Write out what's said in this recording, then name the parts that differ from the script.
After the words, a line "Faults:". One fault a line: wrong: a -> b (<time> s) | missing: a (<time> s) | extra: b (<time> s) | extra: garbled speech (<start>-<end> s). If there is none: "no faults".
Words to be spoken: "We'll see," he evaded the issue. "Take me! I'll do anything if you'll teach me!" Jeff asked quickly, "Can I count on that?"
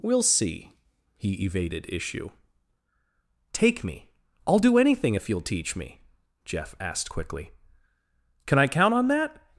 "We'll see," he evaded issue. "Take me! I'll do anything if you'll teach me!" Jeff asked quickly, "Can I count on that?"
Faults:
missing: the (1.9 s)